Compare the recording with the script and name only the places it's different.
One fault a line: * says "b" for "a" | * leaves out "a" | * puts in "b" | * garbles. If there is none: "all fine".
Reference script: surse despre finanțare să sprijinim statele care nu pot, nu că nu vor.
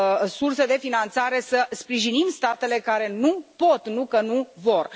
* says "de" for "despre"